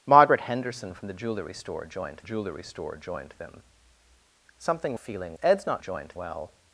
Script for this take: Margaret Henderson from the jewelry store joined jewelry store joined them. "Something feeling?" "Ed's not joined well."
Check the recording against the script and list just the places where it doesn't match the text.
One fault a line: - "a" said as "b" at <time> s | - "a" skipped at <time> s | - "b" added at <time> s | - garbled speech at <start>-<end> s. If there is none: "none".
none